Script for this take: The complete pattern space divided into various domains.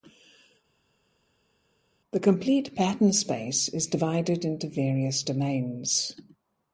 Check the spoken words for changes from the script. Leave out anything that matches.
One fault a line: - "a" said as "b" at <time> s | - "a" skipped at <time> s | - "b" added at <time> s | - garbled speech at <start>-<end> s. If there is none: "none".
- "is" added at 3.7 s